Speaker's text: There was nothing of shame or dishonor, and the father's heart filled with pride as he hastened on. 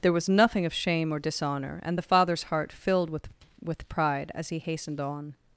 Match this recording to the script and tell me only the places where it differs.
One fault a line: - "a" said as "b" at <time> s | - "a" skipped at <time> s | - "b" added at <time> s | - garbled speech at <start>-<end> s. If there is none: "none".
- "with" added at 3.6 s